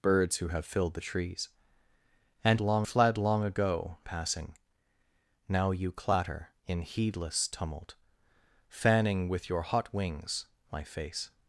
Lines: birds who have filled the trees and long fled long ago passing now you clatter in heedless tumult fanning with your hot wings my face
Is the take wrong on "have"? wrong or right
right